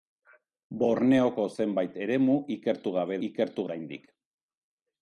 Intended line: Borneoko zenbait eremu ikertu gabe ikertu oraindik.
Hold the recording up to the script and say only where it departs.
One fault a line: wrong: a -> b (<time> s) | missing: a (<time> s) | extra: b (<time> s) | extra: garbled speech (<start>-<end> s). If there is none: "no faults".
no faults